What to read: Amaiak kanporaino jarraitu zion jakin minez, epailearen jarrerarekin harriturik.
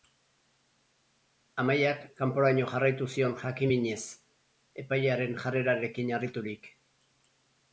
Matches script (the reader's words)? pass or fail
pass